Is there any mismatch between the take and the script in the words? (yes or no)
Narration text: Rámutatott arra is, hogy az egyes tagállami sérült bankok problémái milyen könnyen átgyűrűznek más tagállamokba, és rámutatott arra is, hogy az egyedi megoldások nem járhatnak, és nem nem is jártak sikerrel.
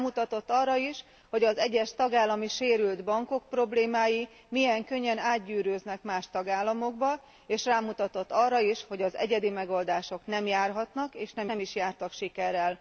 no